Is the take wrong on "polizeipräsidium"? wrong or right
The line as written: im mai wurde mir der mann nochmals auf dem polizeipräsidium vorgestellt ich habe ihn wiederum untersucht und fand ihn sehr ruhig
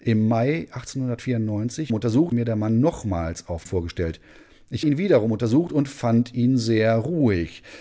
wrong